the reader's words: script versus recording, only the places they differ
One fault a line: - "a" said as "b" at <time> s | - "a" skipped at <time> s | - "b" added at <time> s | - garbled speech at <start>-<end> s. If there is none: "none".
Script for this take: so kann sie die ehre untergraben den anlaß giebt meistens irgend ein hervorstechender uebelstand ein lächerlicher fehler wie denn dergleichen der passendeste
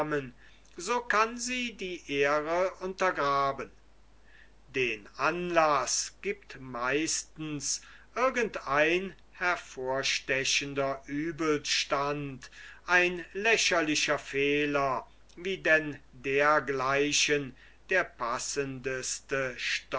none